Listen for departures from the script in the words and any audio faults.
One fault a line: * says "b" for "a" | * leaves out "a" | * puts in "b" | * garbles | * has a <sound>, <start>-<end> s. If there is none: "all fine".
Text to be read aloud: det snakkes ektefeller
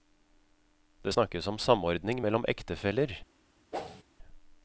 * puts in "om samordning mellom"
* has a whoosh, 3.7-4.0 s